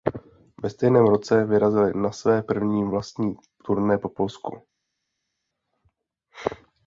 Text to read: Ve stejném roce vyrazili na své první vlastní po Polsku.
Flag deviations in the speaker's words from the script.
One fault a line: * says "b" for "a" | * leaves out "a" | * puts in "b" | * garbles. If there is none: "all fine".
* puts in "turné"